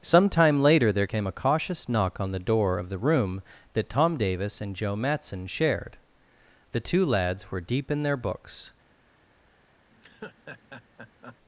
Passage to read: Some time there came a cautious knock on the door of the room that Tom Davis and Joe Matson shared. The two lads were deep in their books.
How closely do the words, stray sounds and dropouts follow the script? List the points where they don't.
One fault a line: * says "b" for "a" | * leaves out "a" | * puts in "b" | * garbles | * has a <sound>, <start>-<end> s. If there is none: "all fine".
* puts in "later"
* has a laugh, 9.9-11.4 s